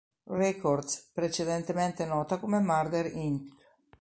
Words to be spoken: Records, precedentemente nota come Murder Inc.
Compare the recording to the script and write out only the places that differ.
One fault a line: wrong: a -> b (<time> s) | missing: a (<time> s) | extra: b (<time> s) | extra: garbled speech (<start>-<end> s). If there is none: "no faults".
no faults